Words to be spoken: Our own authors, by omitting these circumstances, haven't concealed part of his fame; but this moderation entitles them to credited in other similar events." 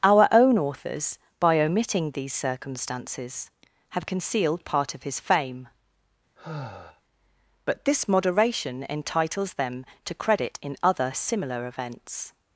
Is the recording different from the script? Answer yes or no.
yes